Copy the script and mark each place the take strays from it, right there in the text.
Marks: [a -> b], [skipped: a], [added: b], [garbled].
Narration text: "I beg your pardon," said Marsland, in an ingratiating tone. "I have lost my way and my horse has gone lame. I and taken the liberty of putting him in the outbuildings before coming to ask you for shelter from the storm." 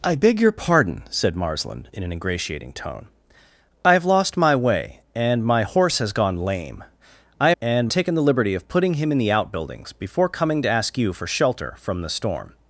"I beg your pardon," said Marsland, in an ingratiating tone. "I have lost my way and my horse has gone lame. I and taken the liberty of putting him in the outbuildings before coming to ask you for shelter from the storm."